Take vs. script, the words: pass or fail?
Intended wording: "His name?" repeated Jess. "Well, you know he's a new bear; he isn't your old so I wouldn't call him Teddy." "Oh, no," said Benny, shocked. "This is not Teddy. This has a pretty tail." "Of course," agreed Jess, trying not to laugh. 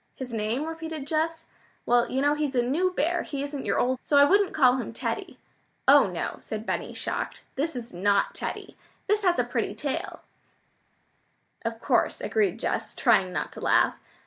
pass